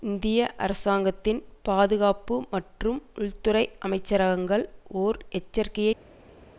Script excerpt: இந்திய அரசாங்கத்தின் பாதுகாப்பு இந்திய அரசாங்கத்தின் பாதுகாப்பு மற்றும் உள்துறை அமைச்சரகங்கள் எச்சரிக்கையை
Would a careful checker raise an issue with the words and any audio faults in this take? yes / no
yes